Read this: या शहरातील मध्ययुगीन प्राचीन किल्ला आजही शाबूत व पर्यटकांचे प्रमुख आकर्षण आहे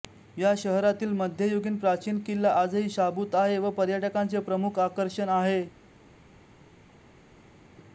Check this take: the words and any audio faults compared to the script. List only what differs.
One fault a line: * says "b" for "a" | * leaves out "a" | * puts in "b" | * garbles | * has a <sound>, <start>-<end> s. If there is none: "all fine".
* puts in "आहे"